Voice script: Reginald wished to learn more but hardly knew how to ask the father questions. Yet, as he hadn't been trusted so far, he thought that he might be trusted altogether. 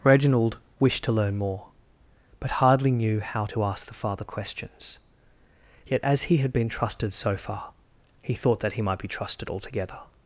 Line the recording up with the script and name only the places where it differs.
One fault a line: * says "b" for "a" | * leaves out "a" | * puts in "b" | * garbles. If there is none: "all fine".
* says "had" for "hadn't"